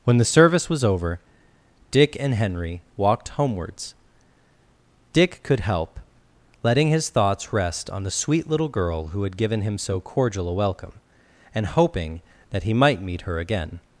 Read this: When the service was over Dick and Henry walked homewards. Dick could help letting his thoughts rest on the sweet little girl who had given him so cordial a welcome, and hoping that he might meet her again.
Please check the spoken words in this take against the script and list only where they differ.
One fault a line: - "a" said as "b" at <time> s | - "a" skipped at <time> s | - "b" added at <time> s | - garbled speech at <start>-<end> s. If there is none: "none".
none